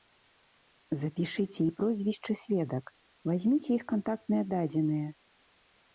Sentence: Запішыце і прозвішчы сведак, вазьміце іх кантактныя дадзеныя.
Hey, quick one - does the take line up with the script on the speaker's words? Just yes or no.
yes